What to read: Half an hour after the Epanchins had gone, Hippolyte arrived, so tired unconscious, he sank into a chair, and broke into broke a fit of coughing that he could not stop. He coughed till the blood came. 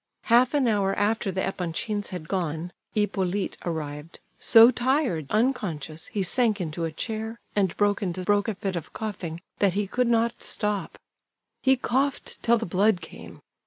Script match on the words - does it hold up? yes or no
yes